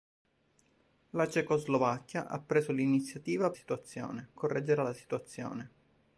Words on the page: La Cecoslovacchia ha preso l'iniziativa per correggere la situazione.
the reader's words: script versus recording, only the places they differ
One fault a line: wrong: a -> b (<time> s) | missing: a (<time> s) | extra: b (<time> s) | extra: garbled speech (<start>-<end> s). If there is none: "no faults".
wrong: per -> situazione (3.5 s)